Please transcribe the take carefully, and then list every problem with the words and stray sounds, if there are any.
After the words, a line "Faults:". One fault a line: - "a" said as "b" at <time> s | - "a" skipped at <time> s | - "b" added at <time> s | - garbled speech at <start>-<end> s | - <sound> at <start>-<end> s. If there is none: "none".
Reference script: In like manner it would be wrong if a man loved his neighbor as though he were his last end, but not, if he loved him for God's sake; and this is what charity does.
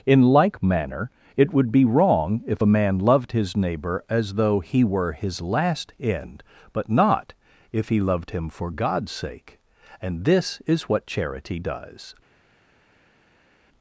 In like manner it would be wrong if a man loved his neighbor as though he were his last end, but not, if he loved him for God's sake; and this is what charity does.
Faults:
none